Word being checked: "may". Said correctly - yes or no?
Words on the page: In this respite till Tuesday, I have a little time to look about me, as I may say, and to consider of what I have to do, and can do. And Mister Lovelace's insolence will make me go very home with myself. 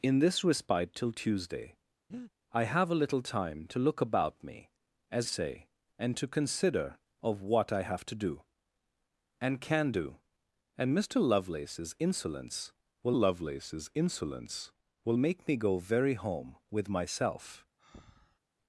no